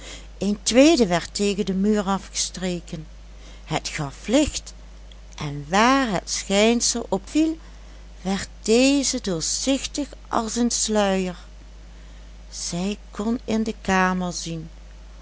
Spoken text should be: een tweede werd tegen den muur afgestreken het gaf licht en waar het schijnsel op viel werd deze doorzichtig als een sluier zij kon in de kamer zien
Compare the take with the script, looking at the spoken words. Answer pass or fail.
pass